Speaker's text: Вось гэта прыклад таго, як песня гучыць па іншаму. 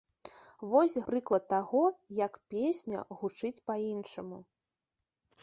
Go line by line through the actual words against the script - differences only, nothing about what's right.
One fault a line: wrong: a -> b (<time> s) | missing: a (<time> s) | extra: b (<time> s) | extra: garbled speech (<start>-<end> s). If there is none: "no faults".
missing: гэта (0.9 s)